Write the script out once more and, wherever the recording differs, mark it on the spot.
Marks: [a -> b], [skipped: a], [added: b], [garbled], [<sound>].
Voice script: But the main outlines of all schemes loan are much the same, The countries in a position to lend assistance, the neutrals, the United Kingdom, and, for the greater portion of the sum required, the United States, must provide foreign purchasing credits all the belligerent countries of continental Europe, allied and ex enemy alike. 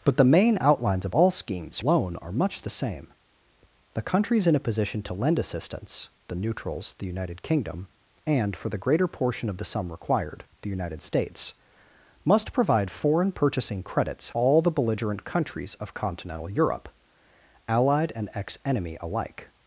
But the main outlines of all schemes loan are much the same, The countries in a position to lend assistance, the neutrals, the United Kingdom, and, for the greater portion of the sum required, the United States, must provide foreign purchasing credits all the belligerent countries of continental Europe, allied and ex enemy alike.